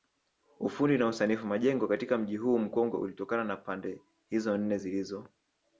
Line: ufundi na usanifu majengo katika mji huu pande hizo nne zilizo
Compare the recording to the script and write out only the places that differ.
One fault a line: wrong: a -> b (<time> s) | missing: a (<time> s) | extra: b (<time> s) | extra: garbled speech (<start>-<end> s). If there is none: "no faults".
extra: mkongwe ulitokana na (2.6 s)